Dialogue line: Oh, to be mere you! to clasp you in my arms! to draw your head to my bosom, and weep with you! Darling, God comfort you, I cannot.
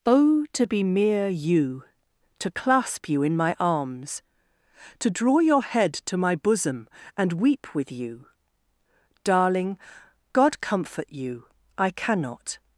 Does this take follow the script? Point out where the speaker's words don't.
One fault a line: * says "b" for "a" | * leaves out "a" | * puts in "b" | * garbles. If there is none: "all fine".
all fine